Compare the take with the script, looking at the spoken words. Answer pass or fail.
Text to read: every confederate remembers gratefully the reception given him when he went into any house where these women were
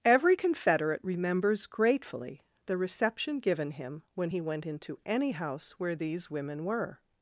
pass